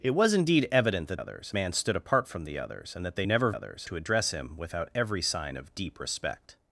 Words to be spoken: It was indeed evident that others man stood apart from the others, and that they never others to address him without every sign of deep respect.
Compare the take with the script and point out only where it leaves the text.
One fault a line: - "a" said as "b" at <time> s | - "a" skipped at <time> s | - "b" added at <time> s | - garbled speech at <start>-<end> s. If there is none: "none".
none